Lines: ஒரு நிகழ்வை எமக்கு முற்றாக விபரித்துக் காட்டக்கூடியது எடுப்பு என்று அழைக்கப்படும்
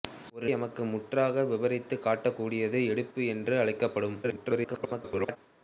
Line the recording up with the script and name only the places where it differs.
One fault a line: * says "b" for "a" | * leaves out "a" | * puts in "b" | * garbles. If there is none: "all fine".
* leaves out "நிகழ்வை"
* garbles